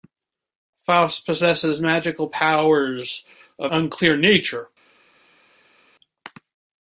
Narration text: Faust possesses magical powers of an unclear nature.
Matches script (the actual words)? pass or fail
fail